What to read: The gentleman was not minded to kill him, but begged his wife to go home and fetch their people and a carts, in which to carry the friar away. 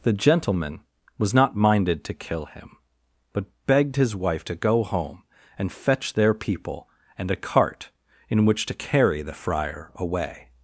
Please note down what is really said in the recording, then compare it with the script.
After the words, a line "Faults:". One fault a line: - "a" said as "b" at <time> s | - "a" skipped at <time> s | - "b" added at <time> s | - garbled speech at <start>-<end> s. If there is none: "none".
The gentleman was not minded to kill him, but begged his wife to go home and fetch their people and a cart, in which to carry the friar away.
Faults:
- "carts" said as "cart" at 7.4 s